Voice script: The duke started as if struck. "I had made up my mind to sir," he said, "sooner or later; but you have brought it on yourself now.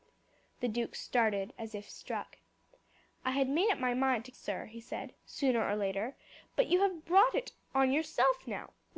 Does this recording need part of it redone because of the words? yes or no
no